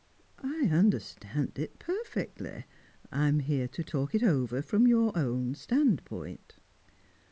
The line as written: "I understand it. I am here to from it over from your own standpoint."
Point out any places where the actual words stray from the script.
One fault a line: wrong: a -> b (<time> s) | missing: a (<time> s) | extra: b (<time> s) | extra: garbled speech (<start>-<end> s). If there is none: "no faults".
extra: perfectly (1.8 s)
wrong: from -> talk (3.8 s)